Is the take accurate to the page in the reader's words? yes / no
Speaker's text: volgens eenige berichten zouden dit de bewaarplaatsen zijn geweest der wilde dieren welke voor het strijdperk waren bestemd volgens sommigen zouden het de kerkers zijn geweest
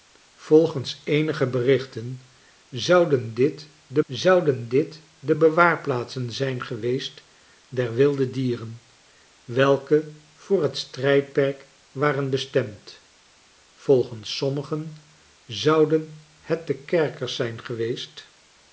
no